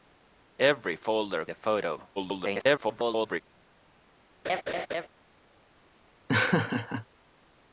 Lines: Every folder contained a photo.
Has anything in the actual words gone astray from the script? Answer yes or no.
yes